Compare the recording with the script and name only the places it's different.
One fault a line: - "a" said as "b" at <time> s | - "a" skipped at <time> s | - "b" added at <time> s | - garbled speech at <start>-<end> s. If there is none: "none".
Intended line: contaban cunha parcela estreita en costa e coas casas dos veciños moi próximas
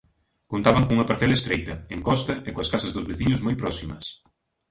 none